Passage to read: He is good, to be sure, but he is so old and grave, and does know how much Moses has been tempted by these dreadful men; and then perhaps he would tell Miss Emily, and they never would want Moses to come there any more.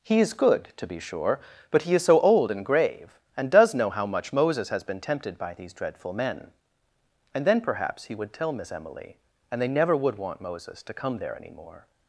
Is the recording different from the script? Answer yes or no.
no